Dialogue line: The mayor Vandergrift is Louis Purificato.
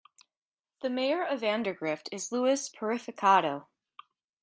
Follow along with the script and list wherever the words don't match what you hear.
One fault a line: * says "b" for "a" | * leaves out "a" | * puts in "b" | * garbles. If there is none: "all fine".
* puts in "of"